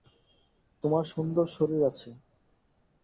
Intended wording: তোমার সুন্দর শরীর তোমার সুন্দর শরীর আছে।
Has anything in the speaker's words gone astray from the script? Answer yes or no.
yes